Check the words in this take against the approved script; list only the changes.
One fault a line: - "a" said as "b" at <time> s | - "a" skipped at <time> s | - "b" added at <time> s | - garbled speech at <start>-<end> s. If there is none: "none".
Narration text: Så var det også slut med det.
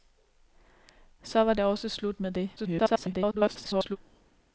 - garbled speech at 2.6-4.0 s